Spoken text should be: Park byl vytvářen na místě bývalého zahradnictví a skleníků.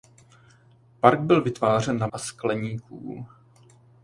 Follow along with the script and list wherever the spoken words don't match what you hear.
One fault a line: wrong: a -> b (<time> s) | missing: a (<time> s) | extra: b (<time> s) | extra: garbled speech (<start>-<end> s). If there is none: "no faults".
missing: místě bývalého zahradnictví (2.1 s)